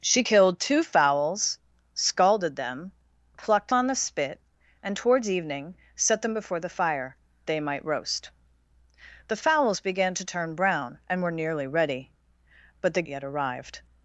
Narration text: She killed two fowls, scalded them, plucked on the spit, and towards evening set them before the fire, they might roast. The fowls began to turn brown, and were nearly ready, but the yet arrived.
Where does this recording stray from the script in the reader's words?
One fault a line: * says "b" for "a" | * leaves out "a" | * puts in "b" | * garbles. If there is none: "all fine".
all fine